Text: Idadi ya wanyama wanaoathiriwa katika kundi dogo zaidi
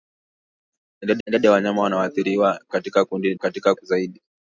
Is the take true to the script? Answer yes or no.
no